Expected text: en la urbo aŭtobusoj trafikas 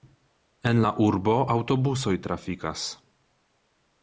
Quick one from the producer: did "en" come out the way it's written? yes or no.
yes